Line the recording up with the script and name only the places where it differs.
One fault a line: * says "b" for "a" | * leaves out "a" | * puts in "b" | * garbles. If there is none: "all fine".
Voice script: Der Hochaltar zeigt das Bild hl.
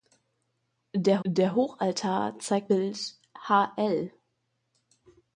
* puts in "der"
* leaves out "das"